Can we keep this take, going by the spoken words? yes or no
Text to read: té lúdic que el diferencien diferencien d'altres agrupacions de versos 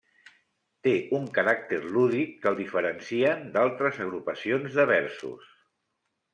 no